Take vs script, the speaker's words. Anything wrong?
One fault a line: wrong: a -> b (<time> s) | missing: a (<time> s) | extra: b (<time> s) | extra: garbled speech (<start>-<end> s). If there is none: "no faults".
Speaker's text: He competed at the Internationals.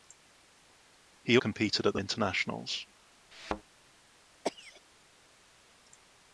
no faults